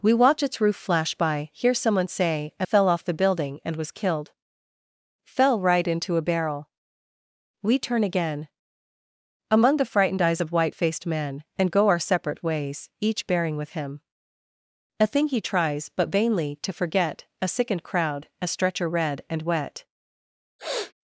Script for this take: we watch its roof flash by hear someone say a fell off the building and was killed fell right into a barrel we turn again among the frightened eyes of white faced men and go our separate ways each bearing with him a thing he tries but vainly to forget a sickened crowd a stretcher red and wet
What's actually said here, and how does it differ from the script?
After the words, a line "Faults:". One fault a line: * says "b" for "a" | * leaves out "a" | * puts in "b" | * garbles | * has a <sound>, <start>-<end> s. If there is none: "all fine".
we watch its roof flash by hear someone say a fell off the building and was killed fell right into a barrel we turn again among the frightened eyes of white faced men and go our separate ways each bearing with him a thing he tries but vainly to forget a sickened crowd a stretcher red and wet
Faults:
* has a sniff, 20.6-20.9 s